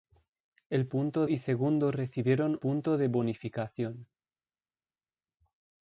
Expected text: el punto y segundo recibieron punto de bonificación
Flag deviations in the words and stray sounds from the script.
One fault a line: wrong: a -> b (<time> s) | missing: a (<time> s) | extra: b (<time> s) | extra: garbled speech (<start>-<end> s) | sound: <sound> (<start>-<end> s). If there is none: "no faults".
no faults